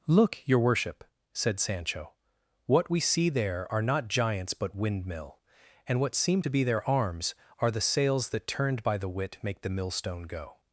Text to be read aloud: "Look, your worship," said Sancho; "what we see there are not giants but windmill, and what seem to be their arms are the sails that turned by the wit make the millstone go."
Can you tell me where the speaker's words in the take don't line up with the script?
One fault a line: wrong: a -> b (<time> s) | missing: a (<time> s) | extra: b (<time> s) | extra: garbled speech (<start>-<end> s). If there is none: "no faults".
no faults